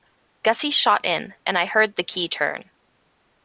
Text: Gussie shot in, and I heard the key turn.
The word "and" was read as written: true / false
true